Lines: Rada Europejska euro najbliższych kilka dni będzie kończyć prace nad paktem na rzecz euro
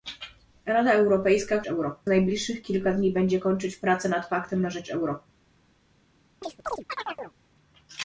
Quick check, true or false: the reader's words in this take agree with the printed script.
true